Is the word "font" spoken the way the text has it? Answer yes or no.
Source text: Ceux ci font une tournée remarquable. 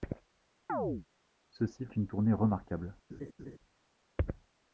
no